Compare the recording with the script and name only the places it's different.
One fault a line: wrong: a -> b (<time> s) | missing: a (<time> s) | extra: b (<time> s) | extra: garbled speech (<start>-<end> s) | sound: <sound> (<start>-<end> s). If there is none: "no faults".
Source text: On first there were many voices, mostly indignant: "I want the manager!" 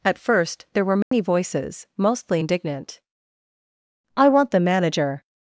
wrong: On -> At (0.0 s)
sound: dropout (1.0-1.1 s)